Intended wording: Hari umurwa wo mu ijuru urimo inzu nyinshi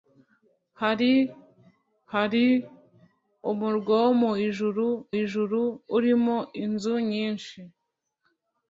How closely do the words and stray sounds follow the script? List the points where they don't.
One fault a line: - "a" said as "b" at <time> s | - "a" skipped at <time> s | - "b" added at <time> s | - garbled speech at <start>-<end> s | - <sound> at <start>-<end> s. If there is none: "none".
- "hari" added at 2.1 s
- "ijuru" added at 5.2 s